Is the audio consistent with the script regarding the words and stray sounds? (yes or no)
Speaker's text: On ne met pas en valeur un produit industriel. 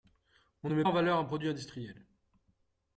no